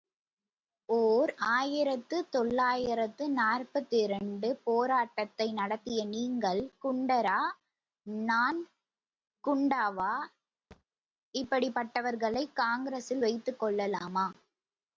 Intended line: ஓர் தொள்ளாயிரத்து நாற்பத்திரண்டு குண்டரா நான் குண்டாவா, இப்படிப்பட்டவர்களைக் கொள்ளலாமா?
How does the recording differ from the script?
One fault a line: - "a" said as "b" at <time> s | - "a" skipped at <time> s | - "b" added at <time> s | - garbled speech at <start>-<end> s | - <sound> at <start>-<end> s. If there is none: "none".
- "ஆயிரத்து" added at 1.5 s
- "போராட்டத்தை நடத்திய நீங்கள்" added at 4.6 s
- thud at 10.7-10.8 s
- "காங்கிரசில் வைத்துக்" added at 12.5 s